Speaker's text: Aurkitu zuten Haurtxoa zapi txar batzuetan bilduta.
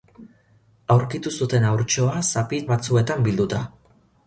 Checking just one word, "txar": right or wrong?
wrong